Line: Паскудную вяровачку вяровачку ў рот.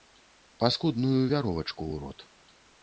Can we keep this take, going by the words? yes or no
no